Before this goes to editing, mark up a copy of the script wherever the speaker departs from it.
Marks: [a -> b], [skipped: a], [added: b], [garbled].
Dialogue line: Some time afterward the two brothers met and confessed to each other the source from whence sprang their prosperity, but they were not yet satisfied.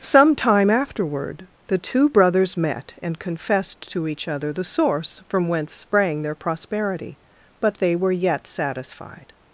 Some time afterward the two brothers met and confessed to each other the source from whence sprang their prosperity, but they were [skipped: not] yet satisfied.